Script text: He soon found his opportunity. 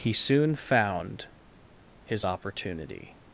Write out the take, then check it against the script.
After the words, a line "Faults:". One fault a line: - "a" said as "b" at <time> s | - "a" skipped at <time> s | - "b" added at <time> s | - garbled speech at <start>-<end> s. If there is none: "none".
He soon found his opportunity.
Faults:
none